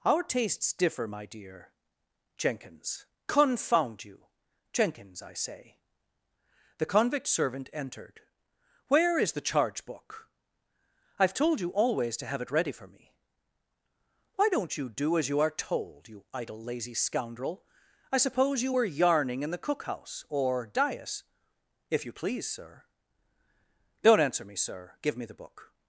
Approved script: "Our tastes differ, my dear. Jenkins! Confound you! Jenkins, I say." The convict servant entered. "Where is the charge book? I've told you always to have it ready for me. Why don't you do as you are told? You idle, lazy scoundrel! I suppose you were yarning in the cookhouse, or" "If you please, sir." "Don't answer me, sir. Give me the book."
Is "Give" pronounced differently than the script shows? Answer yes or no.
no